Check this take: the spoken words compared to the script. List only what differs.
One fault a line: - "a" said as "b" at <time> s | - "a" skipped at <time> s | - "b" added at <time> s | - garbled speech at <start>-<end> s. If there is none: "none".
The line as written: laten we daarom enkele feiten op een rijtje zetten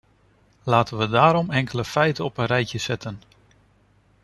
none